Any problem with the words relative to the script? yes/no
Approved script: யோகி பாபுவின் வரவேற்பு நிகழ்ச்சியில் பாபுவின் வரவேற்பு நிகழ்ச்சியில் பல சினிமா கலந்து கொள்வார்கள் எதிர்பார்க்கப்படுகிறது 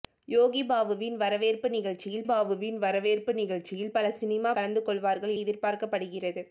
no